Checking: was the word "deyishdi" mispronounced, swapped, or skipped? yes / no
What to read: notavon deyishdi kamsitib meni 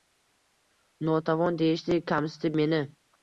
no